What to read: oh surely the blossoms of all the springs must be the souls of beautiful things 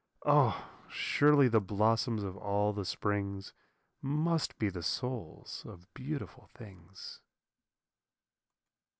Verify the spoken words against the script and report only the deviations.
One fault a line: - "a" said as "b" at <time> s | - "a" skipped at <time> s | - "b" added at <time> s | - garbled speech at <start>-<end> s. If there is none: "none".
none